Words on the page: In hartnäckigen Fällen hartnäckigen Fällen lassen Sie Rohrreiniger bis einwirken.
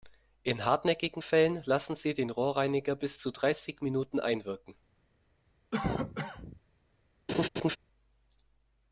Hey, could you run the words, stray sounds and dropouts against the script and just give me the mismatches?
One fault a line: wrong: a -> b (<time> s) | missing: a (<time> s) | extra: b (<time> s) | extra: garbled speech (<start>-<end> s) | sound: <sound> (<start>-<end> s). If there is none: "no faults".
missing: hartnäckigen Fällen (1.6 s)
extra: den (2.1 s)
extra: zu dreißig Minuten (3.2 s)
sound: cough (5.7-6.6 s)
sound: laugh (7.3-7.8 s)